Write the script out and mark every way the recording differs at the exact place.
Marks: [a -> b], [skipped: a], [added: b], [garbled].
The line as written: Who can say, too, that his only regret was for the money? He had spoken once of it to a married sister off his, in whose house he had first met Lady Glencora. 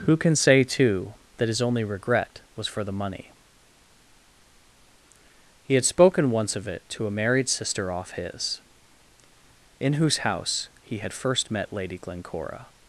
Who can say, too, that his only regret was for the money? He had spoken once of it to a married sister off his, in whose house he had first met Lady Glencora.